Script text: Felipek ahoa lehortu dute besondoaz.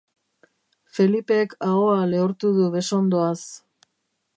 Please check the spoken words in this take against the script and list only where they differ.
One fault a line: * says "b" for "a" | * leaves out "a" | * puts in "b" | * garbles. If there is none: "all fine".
* says "du" for "dute"